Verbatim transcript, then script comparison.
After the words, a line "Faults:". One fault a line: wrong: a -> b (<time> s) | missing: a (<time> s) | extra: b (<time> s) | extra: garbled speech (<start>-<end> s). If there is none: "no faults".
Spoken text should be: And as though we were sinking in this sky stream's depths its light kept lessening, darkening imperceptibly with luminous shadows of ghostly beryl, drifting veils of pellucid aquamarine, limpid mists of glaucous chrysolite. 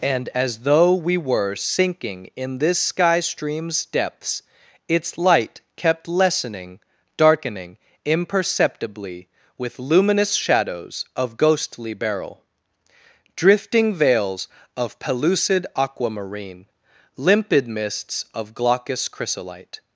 And as though we were sinking in this sky stream's depths its light kept lessening, darkening imperceptibly with luminous shadows of ghostly beryl, drifting veils of pellucid aquamarine, limpid mists of glaucous chrysolite.
Faults:
no faults